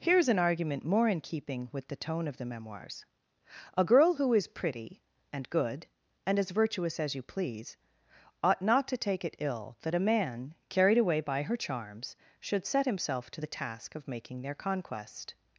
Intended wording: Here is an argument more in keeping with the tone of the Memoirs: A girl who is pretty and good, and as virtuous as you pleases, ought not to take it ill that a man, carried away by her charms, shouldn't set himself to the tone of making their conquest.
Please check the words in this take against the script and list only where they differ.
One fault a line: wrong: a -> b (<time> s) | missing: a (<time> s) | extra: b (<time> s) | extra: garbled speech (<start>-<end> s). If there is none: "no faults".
wrong: pleases -> please (7.2 s)
wrong: shouldn't -> should (12.4 s)
wrong: tone -> task (13.5 s)